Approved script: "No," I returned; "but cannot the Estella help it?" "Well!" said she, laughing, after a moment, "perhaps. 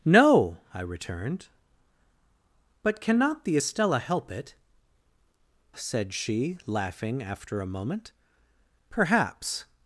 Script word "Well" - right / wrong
wrong